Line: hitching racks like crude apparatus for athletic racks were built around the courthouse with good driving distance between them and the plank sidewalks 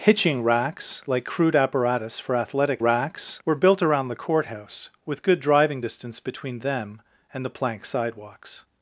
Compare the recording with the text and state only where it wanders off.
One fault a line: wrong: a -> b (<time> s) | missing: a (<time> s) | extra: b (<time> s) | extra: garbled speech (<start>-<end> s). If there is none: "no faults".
no faults